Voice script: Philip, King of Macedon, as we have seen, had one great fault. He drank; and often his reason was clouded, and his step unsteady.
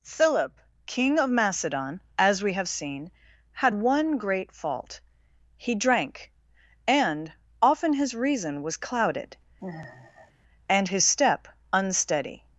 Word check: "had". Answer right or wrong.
right